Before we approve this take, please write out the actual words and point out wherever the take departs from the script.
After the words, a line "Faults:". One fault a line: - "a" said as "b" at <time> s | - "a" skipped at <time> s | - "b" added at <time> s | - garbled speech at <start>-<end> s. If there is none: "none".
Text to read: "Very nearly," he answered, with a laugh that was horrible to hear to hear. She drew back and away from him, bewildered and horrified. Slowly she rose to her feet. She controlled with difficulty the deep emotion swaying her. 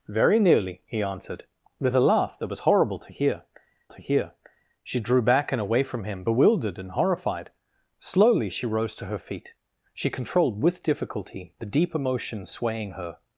"Very nearly," he answered, with a laugh that was horrible to hear to hear. She drew back and away from him, bewildered and horrified. Slowly she rose to her feet. She controlled with difficulty the deep emotion swaying her.
Faults:
none